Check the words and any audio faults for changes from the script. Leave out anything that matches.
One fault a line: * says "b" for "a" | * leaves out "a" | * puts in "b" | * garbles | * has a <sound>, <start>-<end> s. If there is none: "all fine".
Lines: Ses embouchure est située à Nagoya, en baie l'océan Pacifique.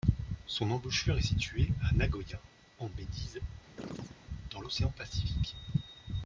* says "Son" for "Ses"
* puts in "d'Ise dans"
* has a chirp, 3.8-4.2 s